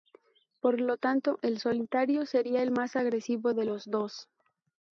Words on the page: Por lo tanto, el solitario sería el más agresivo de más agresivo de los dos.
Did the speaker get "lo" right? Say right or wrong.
right